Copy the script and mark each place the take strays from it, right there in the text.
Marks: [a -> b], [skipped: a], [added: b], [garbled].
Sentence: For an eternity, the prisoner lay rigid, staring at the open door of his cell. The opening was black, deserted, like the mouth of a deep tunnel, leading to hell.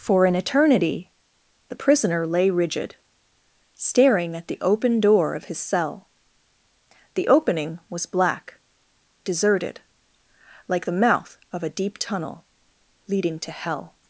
For an eternity, the prisoner lay rigid, staring at the open door of his cell. The opening was black, deserted, like the mouth of a deep tunnel, leading to hell.